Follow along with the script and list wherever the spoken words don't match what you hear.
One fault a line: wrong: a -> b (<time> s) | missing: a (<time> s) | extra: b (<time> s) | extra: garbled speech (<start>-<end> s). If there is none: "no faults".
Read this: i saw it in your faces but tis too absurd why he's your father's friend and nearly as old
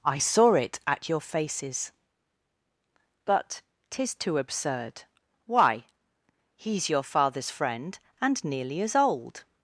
wrong: in -> at (0.9 s)